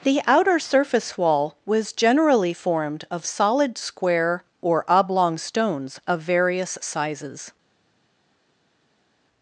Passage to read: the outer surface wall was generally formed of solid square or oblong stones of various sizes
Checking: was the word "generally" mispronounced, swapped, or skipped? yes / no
no